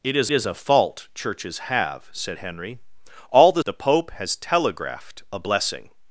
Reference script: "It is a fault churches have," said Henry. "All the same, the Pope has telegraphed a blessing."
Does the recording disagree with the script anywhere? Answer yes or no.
yes